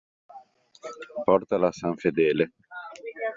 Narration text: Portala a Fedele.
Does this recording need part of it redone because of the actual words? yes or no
yes